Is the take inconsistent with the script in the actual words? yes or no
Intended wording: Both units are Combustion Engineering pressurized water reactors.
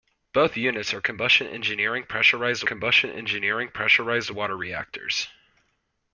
yes